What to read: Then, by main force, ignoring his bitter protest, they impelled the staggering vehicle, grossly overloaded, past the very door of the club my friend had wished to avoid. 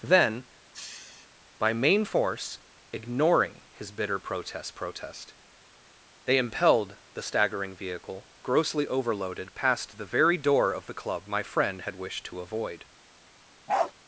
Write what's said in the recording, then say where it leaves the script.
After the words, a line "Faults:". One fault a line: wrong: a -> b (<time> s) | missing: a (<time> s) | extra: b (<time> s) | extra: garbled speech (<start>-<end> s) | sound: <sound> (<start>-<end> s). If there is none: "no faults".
Then, by main force, ignoring his bitter protest protest, they impelled the staggering vehicle, grossly overloaded, past the very door of the club my friend had wished to avoid.
Faults:
sound: sniff (0.7-1.3 s)
extra: protest (4.7 s)
sound: bark (13.7-13.9 s)